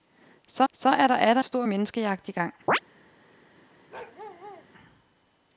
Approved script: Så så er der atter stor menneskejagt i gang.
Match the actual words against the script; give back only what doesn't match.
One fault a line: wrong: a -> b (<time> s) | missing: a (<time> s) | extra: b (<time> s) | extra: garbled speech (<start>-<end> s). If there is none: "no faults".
no faults